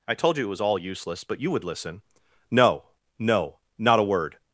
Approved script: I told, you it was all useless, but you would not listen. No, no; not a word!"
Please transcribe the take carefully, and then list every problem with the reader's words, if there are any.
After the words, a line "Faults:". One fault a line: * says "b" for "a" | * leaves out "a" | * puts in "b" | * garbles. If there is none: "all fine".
I told, you it was all useless, but you would listen. No, no; not a word!"
Faults:
* leaves out "not"